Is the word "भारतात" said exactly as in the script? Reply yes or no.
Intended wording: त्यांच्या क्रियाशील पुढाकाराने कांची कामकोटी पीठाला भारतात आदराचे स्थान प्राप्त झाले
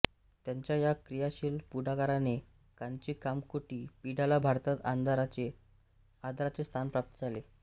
yes